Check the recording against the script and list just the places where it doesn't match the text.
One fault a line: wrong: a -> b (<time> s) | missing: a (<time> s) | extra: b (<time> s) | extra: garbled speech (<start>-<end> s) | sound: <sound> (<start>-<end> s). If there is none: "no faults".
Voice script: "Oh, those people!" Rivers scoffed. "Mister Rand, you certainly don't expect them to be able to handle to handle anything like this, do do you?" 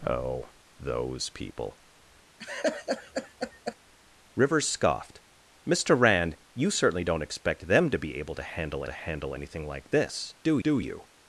sound: laugh (2.4-3.8 s)